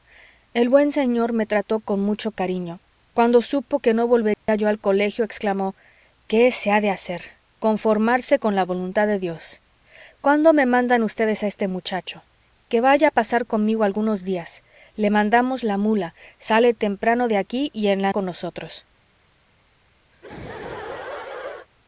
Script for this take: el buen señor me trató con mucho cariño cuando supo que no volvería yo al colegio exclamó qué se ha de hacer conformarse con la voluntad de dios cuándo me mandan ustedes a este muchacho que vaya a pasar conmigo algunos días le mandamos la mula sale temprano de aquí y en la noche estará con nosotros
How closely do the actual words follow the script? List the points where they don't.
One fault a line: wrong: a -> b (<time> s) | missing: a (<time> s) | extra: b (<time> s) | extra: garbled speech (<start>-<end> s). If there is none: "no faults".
missing: noche estará (18.1 s)